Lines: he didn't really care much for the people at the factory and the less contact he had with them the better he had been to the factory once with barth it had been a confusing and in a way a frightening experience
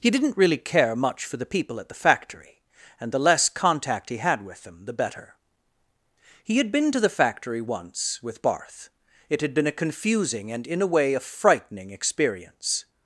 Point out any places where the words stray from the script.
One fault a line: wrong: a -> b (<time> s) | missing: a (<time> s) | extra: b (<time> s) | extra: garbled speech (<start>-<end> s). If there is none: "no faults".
no faults